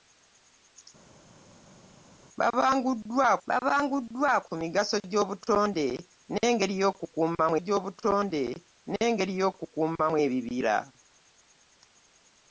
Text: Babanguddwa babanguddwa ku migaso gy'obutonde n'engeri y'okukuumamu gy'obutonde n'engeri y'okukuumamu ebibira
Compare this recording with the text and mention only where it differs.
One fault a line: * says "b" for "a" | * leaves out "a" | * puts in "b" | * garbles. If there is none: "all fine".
all fine